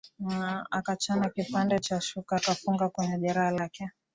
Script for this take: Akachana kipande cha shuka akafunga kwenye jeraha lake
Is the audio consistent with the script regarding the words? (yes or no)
yes